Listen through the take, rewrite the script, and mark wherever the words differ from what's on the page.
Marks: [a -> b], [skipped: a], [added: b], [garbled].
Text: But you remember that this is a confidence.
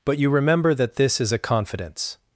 But you remember that this is a confidence.